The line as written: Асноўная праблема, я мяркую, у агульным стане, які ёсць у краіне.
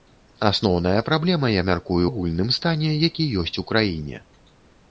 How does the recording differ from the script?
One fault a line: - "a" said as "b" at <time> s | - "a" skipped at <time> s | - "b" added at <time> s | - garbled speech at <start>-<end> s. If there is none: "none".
- "у" skipped at 2.0 s